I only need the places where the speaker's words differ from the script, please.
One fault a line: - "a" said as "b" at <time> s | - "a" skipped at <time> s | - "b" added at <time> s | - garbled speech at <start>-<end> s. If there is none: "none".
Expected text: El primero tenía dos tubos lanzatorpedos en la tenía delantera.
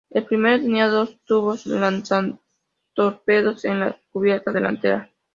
- "tenía" said as "cubierta" at 4.1 s